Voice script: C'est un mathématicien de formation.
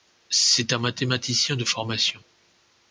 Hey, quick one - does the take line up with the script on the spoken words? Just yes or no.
yes